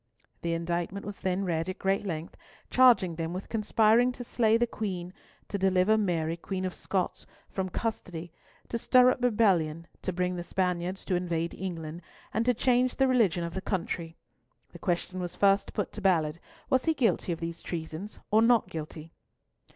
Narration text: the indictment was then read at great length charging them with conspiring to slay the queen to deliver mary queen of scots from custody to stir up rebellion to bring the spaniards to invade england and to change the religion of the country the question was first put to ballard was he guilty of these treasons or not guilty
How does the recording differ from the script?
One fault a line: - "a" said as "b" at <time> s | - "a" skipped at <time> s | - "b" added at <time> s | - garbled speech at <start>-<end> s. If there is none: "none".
none